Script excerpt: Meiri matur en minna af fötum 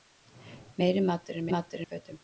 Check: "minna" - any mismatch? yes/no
yes